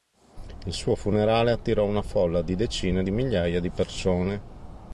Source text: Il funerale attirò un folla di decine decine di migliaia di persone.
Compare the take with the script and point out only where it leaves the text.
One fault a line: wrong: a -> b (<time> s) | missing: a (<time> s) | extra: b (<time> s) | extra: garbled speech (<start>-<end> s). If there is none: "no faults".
extra: suo (0.7 s)
wrong: un -> una (1.9 s)
missing: decine (3.0 s)